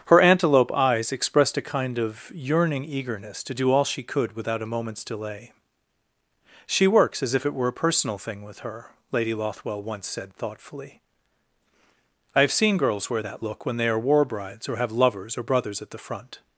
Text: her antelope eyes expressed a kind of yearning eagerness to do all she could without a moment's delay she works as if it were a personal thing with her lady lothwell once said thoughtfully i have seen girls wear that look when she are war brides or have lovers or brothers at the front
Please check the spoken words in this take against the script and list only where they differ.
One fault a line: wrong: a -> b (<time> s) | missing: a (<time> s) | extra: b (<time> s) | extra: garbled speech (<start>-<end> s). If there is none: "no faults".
wrong: she -> they (13.8 s)